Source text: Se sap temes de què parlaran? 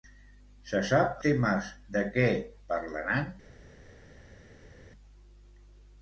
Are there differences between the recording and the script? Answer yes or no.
no